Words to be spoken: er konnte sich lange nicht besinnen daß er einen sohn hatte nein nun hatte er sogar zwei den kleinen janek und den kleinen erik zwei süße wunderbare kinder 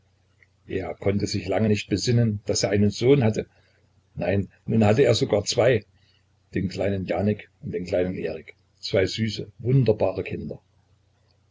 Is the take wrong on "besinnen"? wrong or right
right